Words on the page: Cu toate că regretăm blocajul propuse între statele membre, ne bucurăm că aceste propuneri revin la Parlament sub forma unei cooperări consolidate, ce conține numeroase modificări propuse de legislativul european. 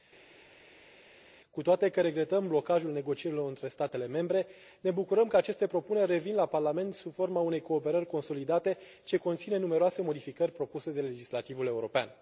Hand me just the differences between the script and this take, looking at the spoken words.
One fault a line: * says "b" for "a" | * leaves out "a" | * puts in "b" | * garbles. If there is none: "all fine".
* says "negocierilor" for "propuse"